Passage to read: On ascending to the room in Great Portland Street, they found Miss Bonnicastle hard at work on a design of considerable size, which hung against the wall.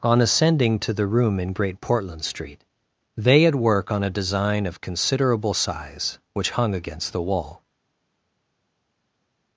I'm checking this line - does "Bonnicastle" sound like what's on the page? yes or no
no